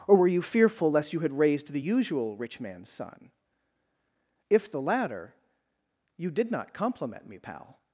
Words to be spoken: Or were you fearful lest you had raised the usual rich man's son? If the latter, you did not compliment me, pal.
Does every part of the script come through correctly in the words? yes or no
yes